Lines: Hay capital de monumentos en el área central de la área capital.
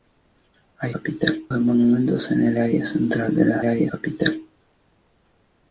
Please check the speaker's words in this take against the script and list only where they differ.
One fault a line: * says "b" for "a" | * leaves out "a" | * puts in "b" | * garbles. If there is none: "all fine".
all fine